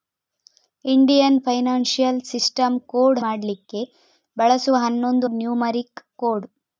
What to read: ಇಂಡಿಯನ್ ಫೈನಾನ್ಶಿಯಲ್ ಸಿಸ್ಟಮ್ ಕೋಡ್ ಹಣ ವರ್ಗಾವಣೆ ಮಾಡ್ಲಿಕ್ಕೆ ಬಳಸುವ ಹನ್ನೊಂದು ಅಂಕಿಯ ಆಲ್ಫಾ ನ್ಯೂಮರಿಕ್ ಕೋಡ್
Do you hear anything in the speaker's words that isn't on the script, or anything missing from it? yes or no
yes